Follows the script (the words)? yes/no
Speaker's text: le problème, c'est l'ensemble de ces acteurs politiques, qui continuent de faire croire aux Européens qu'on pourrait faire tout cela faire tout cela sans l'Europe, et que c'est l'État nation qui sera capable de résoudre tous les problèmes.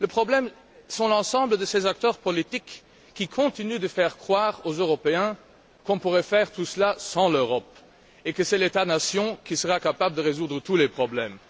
no